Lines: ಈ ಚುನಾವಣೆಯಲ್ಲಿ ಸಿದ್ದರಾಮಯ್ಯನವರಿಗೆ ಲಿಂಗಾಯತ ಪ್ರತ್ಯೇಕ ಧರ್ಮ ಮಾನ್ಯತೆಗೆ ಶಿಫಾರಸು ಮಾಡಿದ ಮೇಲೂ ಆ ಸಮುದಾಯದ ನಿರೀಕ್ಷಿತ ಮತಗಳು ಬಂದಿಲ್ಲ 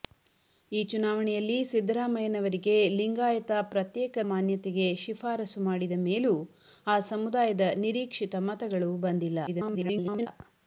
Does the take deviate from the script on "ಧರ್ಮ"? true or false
true